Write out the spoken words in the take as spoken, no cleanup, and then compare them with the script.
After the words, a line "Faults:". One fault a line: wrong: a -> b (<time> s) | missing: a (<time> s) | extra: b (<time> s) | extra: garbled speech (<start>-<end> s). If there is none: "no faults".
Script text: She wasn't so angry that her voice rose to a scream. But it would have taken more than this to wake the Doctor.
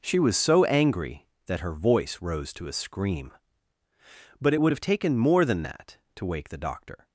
She was so angry that her voice rose to a scream. But it would have taken more than that to wake the Doctor.
Faults:
wrong: wasn't -> was (0.2 s)
wrong: this -> that (5.6 s)